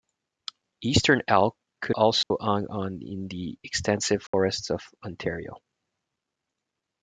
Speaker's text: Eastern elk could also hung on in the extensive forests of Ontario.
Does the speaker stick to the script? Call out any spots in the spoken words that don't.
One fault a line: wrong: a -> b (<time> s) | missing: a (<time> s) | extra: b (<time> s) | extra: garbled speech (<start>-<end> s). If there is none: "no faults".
no faults